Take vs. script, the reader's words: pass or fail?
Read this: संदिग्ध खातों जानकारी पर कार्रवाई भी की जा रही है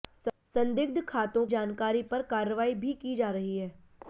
pass